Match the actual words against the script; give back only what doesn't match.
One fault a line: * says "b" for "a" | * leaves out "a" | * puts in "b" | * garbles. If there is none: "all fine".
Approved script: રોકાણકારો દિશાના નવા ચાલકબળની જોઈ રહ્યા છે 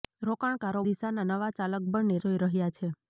all fine